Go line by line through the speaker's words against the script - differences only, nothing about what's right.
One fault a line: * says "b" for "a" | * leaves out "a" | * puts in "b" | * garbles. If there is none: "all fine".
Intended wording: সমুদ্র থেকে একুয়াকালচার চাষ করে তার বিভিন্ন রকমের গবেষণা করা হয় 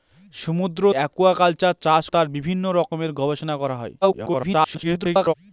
* leaves out "থেকে"
* leaves out "করে"
* garbles